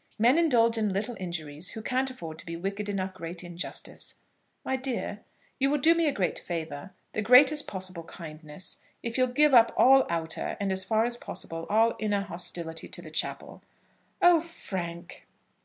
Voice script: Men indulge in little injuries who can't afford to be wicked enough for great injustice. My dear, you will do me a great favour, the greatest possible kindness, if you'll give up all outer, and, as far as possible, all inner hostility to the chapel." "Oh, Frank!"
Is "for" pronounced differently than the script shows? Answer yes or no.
yes